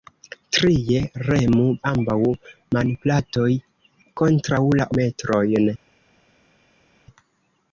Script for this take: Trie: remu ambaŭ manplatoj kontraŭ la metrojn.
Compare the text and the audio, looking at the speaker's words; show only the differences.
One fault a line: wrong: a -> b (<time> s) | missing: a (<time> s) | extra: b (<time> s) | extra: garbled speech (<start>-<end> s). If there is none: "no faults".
no faults